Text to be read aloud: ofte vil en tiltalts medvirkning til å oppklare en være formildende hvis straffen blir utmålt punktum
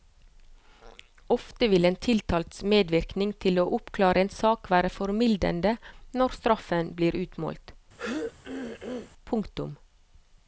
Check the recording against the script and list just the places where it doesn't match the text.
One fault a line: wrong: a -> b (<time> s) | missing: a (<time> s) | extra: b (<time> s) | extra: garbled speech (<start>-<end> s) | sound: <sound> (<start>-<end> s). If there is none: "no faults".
extra: sak (4.4 s)
wrong: hvis -> når (6.2 s)
sound: throat clearing (8.0-9.1 s)